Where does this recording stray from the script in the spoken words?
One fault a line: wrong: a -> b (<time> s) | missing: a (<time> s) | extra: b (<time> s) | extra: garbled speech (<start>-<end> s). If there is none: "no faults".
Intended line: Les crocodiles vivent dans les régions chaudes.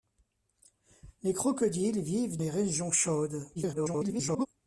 missing: dans (2.4 s)
extra: garbled speech (3.6-4.5 s)